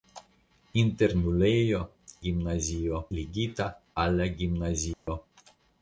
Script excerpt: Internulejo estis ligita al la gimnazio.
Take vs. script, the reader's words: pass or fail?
fail